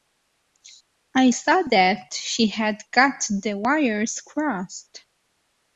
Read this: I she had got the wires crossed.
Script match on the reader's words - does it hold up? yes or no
no